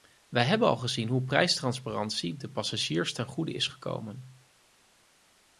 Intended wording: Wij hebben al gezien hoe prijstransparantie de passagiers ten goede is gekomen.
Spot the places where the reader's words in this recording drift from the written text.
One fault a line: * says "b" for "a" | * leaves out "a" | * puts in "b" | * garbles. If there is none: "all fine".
all fine